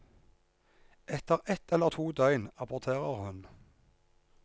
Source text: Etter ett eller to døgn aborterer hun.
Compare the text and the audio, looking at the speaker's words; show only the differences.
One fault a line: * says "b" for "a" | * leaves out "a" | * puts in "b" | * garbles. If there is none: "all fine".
all fine